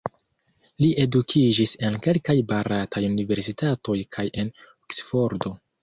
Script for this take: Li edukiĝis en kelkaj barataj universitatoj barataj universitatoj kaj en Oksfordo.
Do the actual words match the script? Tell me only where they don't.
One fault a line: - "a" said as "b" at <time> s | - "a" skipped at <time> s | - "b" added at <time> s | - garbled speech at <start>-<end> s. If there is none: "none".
- "barataj universitatoj" skipped at 4.0 s